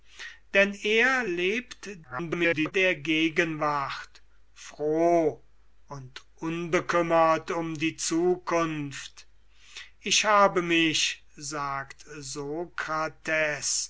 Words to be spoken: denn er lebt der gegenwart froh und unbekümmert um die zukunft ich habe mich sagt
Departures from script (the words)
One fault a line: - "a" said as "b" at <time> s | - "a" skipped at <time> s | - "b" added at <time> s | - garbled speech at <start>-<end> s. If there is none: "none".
- garbled speech at 2.0-2.7 s